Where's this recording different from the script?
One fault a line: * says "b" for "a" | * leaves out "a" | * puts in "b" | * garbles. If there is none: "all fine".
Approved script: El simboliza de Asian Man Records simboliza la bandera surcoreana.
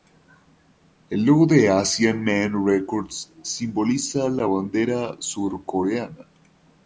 * says "logo" for "simboliza"